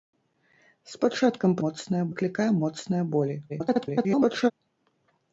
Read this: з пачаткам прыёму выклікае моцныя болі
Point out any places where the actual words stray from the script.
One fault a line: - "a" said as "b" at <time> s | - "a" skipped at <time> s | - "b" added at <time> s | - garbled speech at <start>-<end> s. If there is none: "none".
- "прыёму" said as "моцныя" at 1.7 s
- garbled speech at 3.5-4.5 s